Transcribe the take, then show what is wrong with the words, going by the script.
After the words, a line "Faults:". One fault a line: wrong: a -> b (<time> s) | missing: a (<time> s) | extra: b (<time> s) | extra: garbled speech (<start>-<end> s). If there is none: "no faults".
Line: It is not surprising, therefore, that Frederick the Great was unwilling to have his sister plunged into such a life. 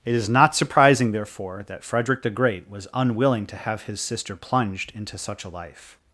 It is not surprising, therefore, that Frederick the Great was unwilling to have his sister plunged into such a life.
Faults:
no faults